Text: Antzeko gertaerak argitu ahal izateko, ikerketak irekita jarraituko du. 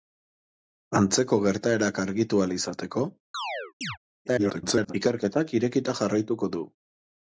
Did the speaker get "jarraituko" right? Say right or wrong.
right